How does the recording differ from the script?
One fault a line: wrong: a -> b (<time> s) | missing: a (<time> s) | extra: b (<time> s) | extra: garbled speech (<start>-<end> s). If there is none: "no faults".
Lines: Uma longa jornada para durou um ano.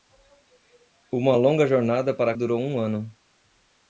no faults